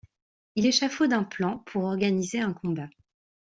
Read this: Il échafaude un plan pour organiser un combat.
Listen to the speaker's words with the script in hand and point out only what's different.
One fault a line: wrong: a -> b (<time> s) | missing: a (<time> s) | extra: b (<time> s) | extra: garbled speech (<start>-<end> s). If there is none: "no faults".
no faults